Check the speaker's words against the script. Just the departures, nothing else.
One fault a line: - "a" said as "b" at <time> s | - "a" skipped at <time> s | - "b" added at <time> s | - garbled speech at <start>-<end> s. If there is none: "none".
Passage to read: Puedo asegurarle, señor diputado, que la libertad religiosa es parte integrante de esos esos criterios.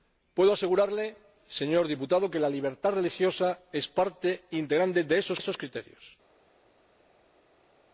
none